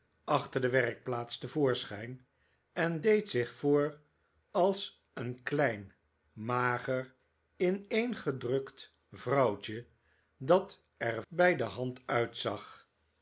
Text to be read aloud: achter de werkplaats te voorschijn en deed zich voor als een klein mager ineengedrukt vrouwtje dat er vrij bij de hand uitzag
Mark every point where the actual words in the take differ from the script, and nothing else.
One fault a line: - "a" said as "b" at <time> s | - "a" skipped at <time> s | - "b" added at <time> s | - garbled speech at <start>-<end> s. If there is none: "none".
- "vrij" skipped at 11.2 s